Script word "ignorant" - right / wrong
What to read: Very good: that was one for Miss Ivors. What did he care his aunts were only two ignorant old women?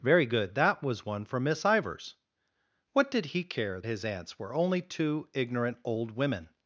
right